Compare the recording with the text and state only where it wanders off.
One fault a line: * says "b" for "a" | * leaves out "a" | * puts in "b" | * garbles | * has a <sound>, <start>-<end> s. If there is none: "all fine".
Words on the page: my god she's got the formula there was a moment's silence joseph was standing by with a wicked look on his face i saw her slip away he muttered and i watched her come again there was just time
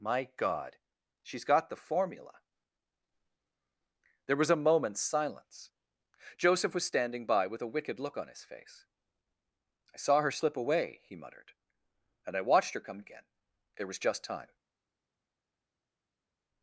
all fine